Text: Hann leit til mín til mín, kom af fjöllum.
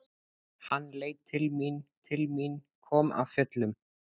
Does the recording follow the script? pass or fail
pass